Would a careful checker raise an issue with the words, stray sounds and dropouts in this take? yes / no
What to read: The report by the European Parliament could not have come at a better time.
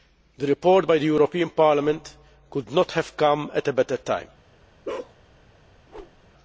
yes